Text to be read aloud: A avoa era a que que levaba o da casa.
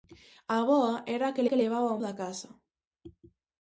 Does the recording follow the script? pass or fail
pass